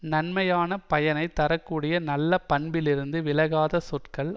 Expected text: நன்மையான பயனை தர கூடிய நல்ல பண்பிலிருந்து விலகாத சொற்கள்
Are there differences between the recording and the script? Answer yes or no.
no